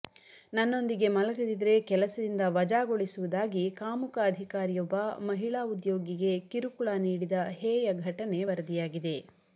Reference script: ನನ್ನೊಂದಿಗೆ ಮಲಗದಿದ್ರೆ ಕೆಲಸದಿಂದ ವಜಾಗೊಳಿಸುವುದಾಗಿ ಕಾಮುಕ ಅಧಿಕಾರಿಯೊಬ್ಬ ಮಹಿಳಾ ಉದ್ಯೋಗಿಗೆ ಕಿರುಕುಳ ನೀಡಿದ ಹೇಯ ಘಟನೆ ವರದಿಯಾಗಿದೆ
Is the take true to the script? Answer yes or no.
yes